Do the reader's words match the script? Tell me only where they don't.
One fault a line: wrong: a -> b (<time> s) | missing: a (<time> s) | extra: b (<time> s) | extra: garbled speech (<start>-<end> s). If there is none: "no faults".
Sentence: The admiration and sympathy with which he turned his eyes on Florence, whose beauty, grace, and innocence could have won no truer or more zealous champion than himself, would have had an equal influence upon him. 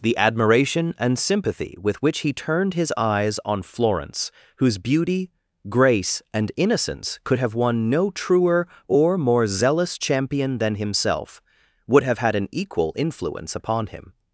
no faults